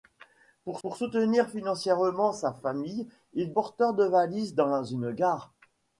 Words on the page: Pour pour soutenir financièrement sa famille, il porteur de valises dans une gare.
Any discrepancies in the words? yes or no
no